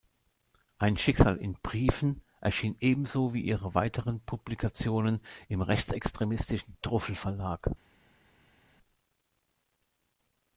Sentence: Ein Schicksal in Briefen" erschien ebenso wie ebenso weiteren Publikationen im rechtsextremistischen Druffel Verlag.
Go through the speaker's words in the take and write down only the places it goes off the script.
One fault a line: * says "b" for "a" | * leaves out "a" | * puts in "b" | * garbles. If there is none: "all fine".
* says "ihre" for "ebenso"